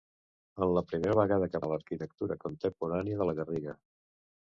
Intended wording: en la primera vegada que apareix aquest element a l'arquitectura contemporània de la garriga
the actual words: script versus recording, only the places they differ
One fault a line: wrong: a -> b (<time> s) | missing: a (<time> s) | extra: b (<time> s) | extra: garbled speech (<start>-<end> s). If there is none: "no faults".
missing: apareix aquest element (1.6 s)